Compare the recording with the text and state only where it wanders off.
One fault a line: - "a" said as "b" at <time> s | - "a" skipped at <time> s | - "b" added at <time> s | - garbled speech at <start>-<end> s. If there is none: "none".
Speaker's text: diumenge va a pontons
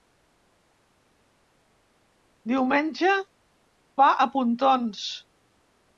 none